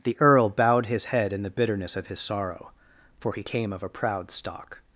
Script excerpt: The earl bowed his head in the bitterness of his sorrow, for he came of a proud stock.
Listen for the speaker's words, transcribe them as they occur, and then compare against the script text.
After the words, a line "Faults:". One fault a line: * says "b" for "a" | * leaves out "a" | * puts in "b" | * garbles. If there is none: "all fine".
The earl bowed his head in the bitterness of his sorrow, for he came of a proud stock.
Faults:
all fine